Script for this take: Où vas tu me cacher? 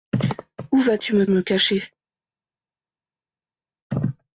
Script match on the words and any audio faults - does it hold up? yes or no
no